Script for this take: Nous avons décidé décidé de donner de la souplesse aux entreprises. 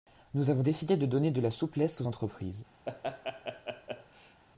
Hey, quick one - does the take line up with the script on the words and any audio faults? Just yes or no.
no